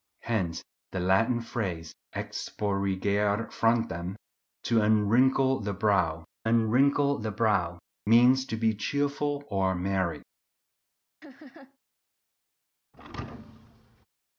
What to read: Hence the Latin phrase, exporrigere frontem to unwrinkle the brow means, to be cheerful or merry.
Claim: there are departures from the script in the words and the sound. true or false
true